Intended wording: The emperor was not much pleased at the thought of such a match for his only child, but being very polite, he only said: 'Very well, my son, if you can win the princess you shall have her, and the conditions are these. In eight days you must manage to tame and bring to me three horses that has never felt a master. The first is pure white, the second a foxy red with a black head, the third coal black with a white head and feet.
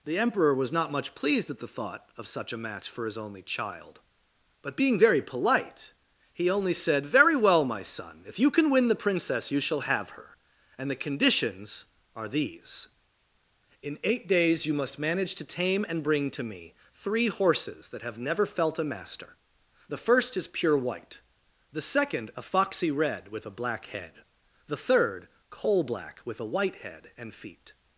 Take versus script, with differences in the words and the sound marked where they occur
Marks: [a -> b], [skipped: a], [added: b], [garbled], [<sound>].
The emperor was not much pleased at the thought of such a match for his only child, but being very polite, he only said: 'Very well, my son, if you can win the princess you shall have her, and the conditions are these. In eight days you must manage to tame and bring to me three horses that [has -> have] never felt a master. The first is pure white, the second a foxy red with a black head, the third coal black with a white head and feet.